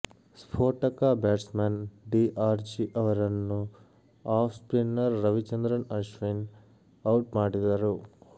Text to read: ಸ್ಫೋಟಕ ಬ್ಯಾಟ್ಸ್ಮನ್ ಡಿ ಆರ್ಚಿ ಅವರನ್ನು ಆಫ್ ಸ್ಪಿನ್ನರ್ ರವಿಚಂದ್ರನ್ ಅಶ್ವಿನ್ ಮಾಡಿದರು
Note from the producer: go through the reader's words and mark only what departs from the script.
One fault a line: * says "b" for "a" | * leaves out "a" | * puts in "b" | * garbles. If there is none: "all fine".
* puts in "ಔಟ್"